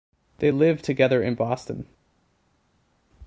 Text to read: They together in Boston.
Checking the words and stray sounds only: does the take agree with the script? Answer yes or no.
no